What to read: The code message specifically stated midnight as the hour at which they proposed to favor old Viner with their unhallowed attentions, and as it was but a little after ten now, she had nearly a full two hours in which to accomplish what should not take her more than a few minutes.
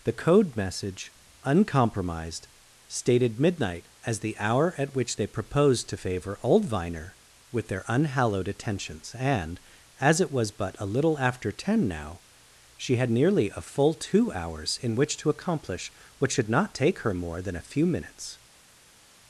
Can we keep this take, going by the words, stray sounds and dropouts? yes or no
no